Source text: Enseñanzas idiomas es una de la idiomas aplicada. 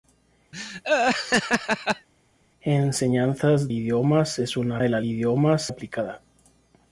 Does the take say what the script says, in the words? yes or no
yes